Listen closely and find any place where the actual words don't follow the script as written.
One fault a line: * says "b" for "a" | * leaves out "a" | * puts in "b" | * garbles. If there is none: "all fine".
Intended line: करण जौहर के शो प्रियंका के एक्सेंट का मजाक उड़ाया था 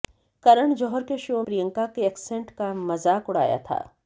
all fine